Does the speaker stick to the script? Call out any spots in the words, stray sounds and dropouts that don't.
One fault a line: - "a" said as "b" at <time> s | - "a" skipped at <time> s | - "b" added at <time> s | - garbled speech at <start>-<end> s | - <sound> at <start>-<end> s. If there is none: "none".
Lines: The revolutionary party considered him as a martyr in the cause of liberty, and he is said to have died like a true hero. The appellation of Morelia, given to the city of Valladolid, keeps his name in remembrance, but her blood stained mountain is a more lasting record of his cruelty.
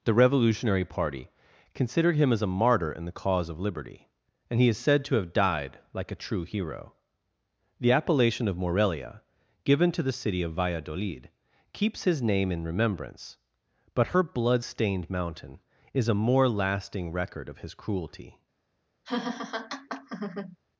- laugh at 19.0-20.6 s